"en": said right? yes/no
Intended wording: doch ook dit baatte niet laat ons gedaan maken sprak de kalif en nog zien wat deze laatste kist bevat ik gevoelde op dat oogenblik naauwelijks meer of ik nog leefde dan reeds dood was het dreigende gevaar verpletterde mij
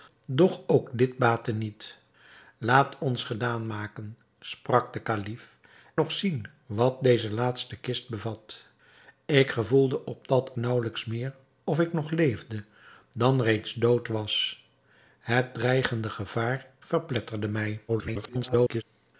no